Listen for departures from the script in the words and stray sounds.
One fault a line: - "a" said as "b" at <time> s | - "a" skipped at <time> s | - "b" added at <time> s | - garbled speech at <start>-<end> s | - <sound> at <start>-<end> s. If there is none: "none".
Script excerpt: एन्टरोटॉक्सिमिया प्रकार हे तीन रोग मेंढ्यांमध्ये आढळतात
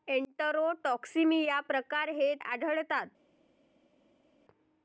- "तीन रोग मेंढ्यांमध्ये" skipped at 2.3 s